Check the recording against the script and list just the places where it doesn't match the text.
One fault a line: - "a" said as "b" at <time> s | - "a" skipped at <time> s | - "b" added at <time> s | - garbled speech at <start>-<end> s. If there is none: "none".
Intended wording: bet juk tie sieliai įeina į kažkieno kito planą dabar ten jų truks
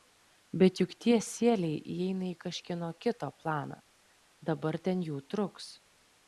none